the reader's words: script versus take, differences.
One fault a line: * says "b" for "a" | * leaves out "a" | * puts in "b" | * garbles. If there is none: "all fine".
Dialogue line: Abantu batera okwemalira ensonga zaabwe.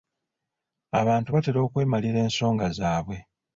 all fine